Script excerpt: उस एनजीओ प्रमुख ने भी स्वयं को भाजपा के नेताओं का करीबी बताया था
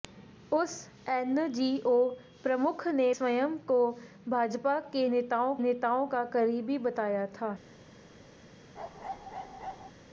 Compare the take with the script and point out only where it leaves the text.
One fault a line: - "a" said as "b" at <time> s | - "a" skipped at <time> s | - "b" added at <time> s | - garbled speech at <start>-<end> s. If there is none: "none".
- "भी" skipped at 3.1 s
- "नेताओं" added at 5.6 s